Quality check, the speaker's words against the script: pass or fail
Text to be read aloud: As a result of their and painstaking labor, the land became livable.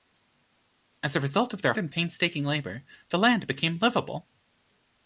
pass